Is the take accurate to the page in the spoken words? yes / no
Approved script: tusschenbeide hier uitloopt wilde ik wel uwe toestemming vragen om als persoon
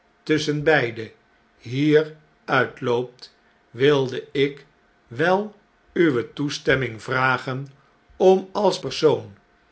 yes